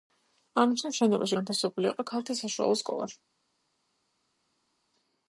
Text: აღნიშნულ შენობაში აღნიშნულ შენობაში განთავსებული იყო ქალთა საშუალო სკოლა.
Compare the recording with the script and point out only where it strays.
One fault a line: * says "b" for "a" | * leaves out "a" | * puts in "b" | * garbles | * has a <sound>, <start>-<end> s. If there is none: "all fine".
* leaves out "აღნიშნულ შენობაში"